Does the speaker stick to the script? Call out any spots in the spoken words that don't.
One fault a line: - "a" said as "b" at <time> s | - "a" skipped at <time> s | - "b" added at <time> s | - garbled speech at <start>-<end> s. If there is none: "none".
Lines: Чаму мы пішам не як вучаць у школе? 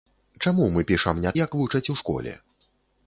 none